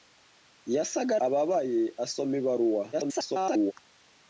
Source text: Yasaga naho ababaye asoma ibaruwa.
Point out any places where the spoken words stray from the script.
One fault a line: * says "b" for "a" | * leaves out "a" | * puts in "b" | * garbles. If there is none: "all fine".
* leaves out "naho"
* garbles